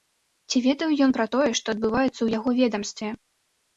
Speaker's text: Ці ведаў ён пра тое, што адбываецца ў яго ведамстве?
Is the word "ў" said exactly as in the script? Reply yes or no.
yes